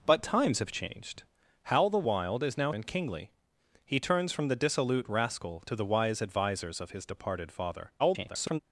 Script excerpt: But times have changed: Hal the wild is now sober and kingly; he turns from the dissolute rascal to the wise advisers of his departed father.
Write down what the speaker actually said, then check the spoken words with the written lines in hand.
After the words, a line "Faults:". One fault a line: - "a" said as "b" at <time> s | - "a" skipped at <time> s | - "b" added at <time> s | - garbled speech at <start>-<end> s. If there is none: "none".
But times have changed: Hal the wild is now and kingly; he turns from the dissolute rascal to the wise advisers of his departed father. [garbled]
Faults:
- "sober" skipped at 2.7 s
- garbled speech at 8.0-8.6 s